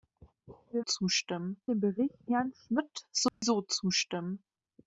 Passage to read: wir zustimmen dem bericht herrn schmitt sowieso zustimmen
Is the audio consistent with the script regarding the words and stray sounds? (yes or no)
no